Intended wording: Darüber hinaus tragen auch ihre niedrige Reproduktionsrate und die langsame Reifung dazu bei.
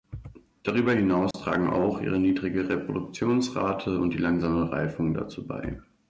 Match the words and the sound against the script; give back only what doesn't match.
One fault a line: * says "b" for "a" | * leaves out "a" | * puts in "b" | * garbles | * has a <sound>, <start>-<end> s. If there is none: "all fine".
* has a dropout, 1.3-1.3 s